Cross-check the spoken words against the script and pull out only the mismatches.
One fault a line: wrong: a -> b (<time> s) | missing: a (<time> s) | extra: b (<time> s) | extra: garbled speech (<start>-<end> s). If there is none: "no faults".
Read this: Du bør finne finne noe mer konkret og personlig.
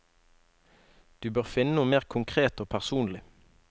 missing: finne (1.8 s)